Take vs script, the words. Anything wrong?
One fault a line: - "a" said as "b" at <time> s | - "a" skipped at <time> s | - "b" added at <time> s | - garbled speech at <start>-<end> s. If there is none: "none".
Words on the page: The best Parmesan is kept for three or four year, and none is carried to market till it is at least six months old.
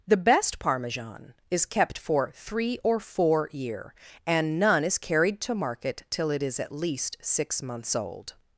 none